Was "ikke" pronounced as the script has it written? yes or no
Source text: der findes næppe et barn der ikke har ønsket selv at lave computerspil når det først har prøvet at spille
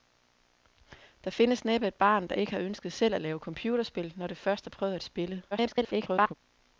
yes